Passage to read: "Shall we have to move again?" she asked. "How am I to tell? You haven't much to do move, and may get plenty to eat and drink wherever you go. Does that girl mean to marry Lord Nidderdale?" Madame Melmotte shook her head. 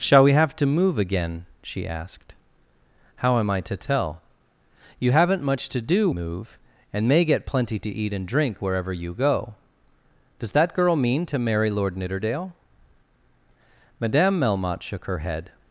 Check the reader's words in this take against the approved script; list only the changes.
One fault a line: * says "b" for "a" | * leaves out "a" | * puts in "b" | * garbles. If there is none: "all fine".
all fine